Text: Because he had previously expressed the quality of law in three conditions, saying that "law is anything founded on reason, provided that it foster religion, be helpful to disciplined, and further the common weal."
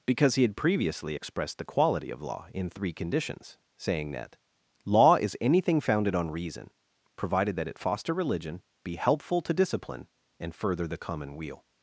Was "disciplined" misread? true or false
true